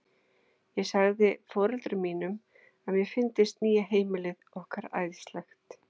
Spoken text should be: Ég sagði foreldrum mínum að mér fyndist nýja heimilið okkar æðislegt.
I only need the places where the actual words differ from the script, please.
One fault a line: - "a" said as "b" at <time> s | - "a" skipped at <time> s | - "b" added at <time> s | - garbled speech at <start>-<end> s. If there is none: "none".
none